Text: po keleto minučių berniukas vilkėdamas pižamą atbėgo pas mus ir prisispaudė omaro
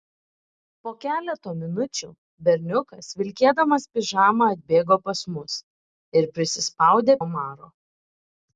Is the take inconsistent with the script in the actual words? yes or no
no